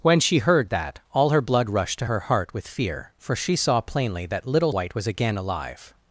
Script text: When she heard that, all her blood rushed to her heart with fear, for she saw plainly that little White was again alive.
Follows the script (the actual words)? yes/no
yes